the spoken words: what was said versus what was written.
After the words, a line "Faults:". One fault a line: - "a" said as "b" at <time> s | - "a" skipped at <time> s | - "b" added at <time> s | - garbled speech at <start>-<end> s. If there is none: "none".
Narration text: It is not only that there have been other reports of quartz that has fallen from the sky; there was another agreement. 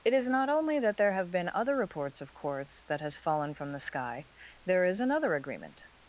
It is not only that there have been other reports of quartz that has fallen from the sky; there is another agreement.
Faults:
- "was" said as "is" at 4.9 s